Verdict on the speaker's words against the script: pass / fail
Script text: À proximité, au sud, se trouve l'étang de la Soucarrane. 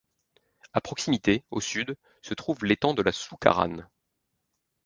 pass